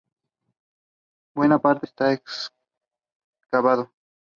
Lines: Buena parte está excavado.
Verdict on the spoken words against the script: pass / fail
pass